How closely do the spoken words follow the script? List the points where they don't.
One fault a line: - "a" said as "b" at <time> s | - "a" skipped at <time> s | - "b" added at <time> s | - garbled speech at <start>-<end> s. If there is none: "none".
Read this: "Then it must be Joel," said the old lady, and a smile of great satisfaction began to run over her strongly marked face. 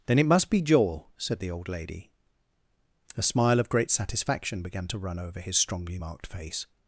- "and" skipped at 2.1 s
- "her" said as "his" at 5.4 s